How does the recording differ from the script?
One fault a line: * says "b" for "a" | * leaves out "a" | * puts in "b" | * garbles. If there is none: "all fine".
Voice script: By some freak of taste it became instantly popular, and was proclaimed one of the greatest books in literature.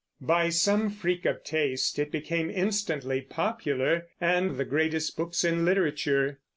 * leaves out "was proclaimed one"